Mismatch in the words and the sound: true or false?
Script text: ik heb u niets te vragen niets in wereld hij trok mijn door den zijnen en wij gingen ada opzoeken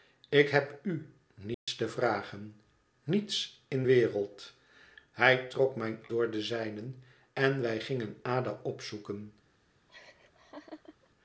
true